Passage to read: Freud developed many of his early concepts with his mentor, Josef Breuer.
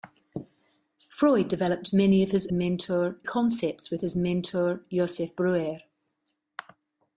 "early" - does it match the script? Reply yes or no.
no